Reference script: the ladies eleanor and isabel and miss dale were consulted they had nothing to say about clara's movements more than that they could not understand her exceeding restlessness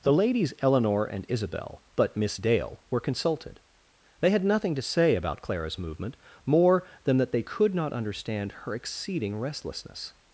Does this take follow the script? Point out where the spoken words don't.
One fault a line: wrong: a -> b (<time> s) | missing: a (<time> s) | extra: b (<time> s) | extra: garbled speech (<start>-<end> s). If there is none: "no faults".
wrong: and -> but (1.9 s)
wrong: movements -> movement (5.8 s)